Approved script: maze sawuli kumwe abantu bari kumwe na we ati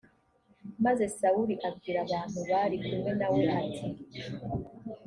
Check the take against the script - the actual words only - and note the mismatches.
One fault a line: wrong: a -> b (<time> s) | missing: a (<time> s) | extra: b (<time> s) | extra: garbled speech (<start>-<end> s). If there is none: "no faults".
wrong: kumwe -> abwira (1.7 s)